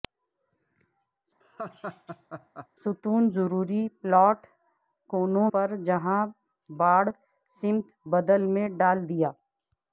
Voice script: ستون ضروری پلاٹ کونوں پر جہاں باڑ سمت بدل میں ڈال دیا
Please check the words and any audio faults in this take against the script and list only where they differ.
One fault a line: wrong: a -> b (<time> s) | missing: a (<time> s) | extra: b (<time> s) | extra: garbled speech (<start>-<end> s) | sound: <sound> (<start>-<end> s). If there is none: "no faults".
sound: laugh (1.4-2.7 s)